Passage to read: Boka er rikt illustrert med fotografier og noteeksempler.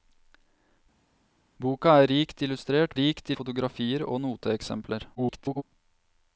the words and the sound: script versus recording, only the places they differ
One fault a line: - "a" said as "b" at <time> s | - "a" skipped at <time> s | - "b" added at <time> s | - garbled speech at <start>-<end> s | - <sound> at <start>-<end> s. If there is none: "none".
- "med" said as "rikt" at 3.0 s
- garbled speech at 5.1-5.6 s